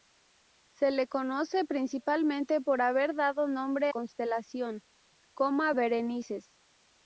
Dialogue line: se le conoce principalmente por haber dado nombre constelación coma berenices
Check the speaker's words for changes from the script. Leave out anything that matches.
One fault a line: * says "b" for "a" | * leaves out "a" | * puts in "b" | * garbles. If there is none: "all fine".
all fine